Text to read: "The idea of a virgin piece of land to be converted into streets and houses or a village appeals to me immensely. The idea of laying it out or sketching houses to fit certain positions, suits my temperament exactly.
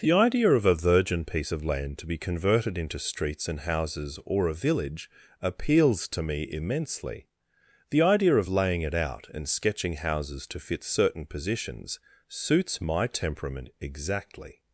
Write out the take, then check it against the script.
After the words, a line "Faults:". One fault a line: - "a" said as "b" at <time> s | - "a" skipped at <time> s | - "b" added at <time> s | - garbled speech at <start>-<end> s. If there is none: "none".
"The idea of a virgin piece of land to be converted into streets and houses or a village appeals to me immensely. The idea of laying it out and sketching houses to fit certain positions, suits my temperament exactly.
Faults:
- "or" said as "and" at 9.3 s